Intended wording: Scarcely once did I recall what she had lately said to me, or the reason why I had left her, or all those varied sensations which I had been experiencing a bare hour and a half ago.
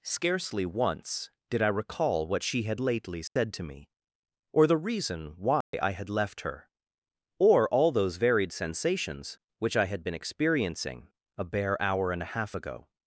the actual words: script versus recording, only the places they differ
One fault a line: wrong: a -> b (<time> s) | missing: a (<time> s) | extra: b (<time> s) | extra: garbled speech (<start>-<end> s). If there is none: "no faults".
no faults